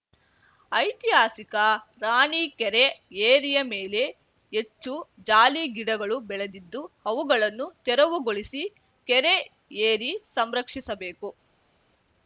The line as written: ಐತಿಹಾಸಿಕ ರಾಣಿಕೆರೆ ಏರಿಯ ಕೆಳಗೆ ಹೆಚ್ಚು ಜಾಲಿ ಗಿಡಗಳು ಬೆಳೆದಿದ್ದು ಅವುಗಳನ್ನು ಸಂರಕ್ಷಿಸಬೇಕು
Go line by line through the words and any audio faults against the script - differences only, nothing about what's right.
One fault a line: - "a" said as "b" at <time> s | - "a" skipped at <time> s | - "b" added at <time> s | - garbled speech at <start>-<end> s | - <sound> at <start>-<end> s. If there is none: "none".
- "ಕೆಳಗೆ" said as "ಮೇಲೆ" at 3.7 s
- "ತೆರವುಗೊಳಿಸಿ ಕೆರೆ ಏರಿ" added at 7.9 s